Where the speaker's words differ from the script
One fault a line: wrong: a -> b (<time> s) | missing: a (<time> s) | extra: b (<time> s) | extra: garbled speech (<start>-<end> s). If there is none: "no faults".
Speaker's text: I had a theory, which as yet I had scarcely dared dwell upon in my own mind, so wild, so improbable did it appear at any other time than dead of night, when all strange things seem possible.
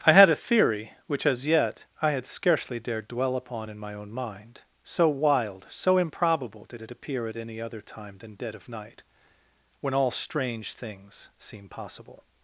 no faults